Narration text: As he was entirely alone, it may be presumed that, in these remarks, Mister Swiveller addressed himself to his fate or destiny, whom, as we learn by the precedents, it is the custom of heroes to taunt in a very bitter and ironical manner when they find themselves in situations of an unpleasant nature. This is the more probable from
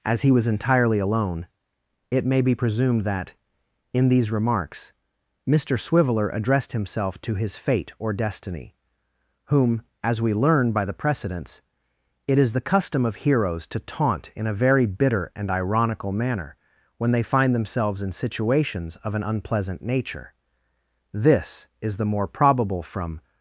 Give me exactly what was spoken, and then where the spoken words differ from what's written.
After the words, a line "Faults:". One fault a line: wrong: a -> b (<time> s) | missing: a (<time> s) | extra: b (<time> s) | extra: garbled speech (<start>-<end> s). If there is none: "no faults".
As he was entirely alone, it may be presumed that, in these remarks, Mister Swiveller addressed himself to his fate or destiny, whom, as we learn by the precedents, it is the custom of heroes to taunt in a very bitter and ironical manner when they find themselves in situations of an unpleasant nature. This is the more probable from
Faults:
no faults